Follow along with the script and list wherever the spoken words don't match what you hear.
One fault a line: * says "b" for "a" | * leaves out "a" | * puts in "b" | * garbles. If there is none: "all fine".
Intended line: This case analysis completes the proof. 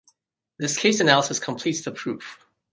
all fine